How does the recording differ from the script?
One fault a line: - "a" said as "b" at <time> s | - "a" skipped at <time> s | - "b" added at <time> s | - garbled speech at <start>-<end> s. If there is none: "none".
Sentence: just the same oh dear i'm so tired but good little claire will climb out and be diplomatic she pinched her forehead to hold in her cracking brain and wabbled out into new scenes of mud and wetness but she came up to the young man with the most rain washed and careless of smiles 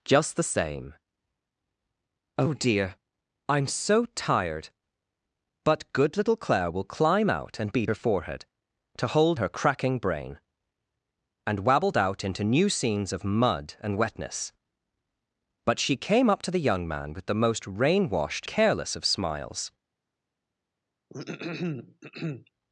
- "diplomatic she pinched" skipped at 7.8 s
- "in" skipped at 9.4 s
- "and" skipped at 18.5 s